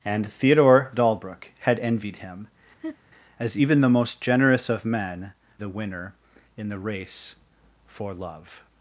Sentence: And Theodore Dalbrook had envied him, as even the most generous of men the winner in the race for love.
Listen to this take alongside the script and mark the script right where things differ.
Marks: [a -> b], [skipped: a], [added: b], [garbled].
And Theodore Dalbrook had envied him, as even the most generous of men the winner in the race for love.